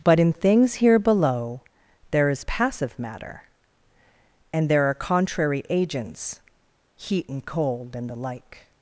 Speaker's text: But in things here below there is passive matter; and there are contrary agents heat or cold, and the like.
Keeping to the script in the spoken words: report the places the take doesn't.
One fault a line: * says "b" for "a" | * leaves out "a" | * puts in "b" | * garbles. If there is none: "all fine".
* says "and" for "or"